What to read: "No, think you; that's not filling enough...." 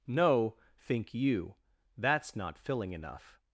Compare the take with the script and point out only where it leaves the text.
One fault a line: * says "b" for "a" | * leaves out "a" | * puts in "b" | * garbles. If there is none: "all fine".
all fine